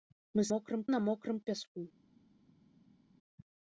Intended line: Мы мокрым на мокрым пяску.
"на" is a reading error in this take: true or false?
false